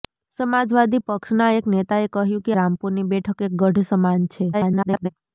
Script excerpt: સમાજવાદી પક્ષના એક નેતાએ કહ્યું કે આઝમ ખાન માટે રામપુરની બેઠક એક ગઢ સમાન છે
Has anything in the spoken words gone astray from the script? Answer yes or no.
yes